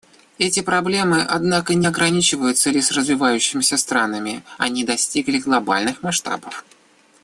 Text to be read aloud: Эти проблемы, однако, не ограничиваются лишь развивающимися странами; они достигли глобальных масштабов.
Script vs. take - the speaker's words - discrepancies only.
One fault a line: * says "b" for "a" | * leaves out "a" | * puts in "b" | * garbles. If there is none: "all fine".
all fine